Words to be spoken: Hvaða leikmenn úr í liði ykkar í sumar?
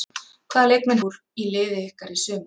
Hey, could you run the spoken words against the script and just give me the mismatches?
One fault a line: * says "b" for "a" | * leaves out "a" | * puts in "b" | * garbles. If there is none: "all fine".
all fine